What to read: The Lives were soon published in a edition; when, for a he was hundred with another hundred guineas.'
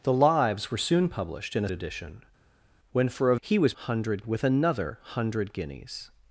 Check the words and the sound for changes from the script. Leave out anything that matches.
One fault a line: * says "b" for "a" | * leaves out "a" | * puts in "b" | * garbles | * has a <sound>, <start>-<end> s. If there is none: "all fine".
all fine